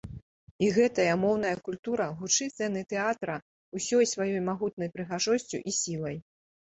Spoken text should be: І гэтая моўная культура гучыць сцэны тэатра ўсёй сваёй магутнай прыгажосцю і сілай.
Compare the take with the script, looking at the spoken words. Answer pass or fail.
pass